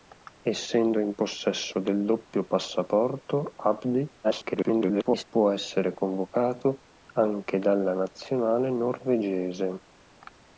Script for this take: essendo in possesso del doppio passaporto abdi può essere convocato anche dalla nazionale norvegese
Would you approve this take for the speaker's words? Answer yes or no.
no